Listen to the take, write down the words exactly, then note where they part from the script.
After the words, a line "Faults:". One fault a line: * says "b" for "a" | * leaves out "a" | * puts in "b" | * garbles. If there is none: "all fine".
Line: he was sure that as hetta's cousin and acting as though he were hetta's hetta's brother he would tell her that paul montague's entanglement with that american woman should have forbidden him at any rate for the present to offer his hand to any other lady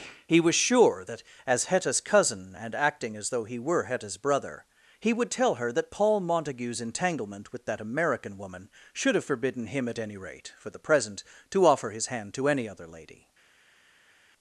he was sure that as hetta's cousin and acting as though he were hetta's brother he would tell her that paul montague's entanglement with that american woman should have forbidden him at any rate for the present to offer his hand to any other lady
Faults:
* leaves out "hetta's"